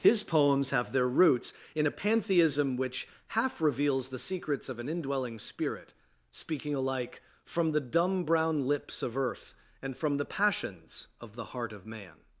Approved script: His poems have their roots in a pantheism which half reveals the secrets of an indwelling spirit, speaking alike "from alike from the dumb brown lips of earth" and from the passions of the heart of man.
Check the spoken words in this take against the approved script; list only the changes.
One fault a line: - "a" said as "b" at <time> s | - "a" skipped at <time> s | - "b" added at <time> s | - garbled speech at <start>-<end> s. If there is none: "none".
- "alike from" skipped at 7.7 s